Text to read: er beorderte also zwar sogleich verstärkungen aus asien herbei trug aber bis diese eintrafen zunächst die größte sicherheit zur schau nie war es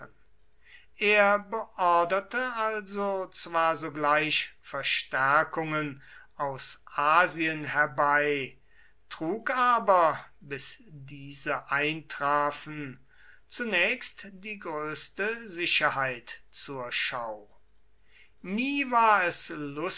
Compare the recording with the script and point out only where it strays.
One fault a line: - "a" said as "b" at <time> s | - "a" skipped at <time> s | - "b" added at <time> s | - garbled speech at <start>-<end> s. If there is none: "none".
none